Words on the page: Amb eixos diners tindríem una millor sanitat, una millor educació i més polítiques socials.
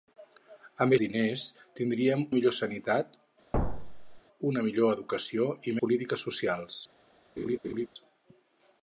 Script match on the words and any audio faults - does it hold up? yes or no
no